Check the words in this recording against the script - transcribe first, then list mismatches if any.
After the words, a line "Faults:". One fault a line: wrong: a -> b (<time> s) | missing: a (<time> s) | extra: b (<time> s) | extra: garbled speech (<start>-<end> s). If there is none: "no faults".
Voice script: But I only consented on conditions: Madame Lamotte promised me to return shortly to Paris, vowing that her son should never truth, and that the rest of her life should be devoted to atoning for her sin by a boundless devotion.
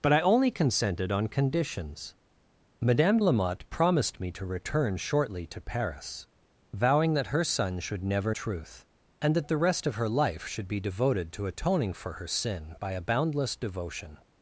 But I only consented on conditions: Madame Lamotte promised me to return shortly to Paris, vowing that her son should never truth, and that the rest of her life should be devoted to atoning for her sin by a boundless devotion.
Faults:
no faults